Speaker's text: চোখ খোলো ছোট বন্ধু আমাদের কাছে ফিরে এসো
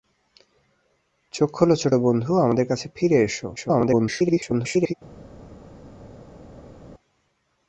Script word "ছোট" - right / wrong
right